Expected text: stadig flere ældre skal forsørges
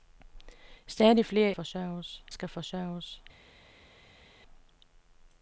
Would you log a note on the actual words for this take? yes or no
yes